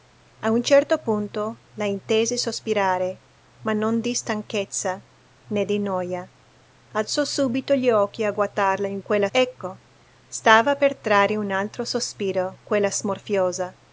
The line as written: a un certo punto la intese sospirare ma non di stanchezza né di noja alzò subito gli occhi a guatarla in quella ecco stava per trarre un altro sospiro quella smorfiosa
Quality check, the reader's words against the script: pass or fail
pass